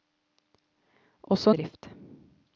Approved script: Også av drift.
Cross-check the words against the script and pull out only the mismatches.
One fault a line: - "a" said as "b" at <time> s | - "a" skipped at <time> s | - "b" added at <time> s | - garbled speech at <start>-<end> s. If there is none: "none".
none